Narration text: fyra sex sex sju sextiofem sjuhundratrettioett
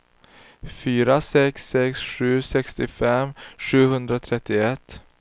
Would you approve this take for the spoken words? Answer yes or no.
yes